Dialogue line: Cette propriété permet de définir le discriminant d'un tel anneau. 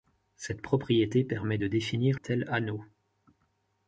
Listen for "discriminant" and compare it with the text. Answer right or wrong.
wrong